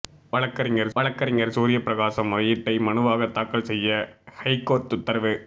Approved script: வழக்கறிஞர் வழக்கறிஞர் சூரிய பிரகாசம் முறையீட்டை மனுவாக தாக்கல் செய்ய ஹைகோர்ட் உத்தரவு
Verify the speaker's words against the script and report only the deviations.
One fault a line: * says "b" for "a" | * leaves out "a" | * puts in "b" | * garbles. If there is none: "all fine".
all fine